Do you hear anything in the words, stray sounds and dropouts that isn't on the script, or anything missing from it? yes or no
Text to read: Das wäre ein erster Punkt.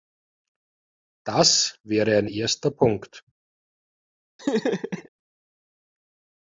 yes